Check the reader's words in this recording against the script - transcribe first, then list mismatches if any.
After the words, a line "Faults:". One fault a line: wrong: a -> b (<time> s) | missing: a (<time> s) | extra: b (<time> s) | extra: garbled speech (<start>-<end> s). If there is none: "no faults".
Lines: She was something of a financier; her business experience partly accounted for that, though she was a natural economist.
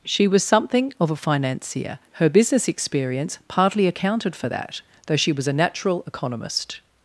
She was something of a financier; her business experience partly accounted for that, though she was a natural economist.
Faults:
no faults